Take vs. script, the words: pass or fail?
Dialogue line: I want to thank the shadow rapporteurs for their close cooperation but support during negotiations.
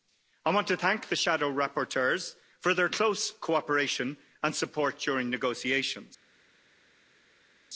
fail